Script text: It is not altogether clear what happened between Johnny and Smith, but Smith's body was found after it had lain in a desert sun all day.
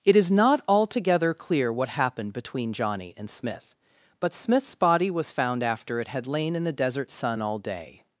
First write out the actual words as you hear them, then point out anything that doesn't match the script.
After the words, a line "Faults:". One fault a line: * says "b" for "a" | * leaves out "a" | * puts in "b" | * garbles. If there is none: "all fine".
It is not altogether clear what happened between Johnny and Smith, but Smith's body was found after it had lain in the desert sun all day.
Faults:
* says "the" for "a"